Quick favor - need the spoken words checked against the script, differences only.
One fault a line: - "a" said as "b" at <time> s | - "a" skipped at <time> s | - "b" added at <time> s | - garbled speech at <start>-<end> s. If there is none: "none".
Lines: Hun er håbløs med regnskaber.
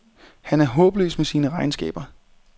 - "Hun" said as "Han" at 0.4 s
- "sine" added at 1.2 s